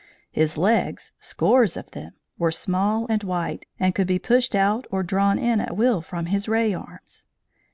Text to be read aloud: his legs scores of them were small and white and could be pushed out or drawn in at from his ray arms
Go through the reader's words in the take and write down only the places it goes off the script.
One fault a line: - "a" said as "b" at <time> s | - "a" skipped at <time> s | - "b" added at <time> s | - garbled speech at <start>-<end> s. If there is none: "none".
- "will" added at 5.7 s